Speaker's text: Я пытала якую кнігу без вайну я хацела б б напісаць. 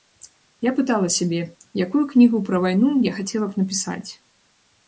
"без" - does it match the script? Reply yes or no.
no